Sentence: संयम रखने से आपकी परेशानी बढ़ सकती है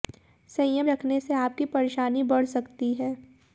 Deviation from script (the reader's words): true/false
false